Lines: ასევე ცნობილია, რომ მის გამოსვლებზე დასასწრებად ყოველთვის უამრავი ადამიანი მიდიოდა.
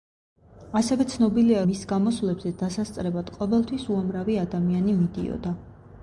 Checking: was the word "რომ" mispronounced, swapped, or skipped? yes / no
yes